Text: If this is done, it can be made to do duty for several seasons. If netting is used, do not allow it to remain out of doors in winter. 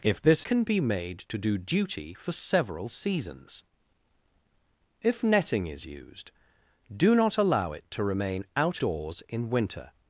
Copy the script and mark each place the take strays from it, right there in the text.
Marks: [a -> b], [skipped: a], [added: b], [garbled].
If this [skipped: is done, it] can be made to do duty for several seasons. If netting is used, do not allow it to remain out [skipped: of] doors in winter.